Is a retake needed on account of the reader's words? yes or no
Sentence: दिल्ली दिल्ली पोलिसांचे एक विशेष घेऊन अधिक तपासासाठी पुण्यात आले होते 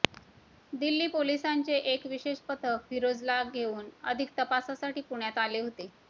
yes